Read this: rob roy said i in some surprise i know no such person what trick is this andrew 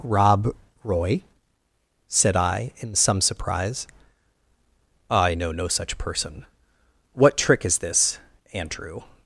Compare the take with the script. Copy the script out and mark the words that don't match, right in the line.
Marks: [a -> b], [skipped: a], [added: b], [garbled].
rob roy said i in some surprise i know no such person what trick is this andrew